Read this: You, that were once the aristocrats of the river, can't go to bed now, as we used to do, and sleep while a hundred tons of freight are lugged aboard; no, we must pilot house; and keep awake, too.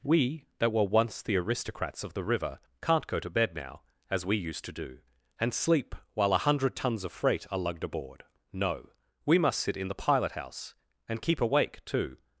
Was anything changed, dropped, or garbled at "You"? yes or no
yes